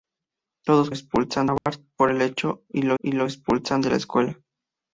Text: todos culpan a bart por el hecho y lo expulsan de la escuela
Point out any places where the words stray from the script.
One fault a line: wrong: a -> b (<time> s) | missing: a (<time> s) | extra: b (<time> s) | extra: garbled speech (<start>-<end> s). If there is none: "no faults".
wrong: culpan -> expulsan (0.9 s)
extra: y lo (3.0 s)